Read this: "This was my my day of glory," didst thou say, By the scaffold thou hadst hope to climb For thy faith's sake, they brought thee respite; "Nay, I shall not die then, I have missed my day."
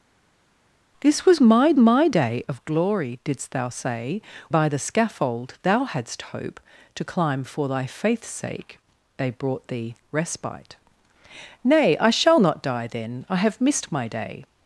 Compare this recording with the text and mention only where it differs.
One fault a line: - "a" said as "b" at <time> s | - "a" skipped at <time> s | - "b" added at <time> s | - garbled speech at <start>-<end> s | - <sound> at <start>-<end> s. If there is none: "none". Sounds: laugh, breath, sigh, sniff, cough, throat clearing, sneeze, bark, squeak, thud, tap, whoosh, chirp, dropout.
none